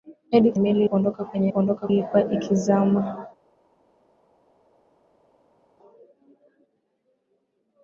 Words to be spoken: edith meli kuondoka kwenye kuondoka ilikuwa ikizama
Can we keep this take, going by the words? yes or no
yes